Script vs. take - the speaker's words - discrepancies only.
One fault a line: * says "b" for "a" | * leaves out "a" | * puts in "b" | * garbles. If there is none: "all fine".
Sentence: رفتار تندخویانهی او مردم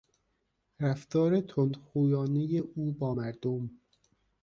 * puts in "با"